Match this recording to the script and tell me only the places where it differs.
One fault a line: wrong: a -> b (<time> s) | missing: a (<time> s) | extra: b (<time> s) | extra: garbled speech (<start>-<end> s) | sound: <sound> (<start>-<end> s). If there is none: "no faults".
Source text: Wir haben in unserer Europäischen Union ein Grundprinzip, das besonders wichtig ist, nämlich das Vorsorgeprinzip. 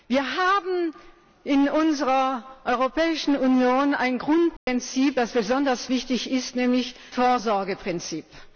sound: dropout (4.6-4.7 s)
missing: das (7.0 s)